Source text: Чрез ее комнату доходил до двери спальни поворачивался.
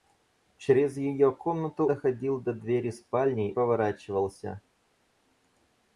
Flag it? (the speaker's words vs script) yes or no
no